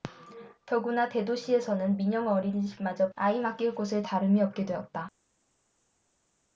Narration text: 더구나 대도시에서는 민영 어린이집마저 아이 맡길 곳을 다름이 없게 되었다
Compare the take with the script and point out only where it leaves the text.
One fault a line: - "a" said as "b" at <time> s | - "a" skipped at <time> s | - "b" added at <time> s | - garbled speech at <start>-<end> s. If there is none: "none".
none